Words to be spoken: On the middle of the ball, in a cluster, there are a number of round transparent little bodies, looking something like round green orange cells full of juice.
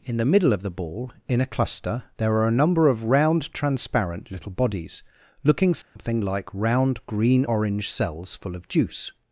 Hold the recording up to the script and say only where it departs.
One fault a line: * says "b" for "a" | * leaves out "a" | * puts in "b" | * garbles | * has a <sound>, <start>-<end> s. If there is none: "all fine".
* says "In" for "On"
* has a dropout, 5.8-6.0 s